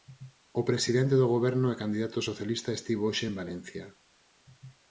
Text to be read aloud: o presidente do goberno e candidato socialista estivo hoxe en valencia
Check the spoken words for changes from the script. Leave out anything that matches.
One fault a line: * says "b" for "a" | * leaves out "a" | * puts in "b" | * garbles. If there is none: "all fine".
all fine